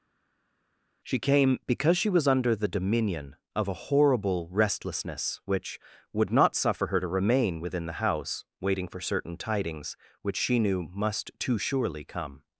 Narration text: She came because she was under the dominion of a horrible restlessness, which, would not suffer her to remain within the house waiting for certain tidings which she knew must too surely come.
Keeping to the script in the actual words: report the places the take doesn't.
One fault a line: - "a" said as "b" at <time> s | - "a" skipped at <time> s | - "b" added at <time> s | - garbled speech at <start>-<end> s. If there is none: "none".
none